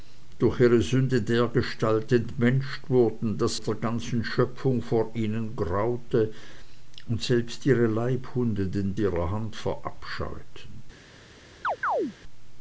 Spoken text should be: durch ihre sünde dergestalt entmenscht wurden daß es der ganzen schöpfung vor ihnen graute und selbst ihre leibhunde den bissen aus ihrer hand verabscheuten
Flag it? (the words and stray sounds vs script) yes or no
yes